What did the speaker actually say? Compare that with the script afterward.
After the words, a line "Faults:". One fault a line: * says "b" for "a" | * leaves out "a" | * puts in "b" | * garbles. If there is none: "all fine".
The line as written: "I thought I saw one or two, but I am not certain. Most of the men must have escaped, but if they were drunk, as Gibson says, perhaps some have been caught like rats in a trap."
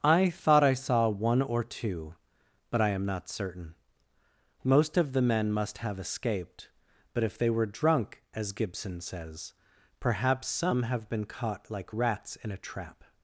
"I thought I saw one or two, but I am not certain. Most of the men must have escaped, but if they were drunk, as Gibson says, perhaps some have been caught like rats in a trap."
Faults:
all fine